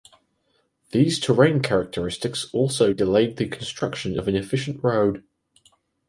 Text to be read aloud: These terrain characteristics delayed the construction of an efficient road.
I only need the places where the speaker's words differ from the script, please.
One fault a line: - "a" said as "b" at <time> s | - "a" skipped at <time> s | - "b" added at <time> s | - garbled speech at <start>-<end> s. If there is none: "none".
- "also" added at 2.5 s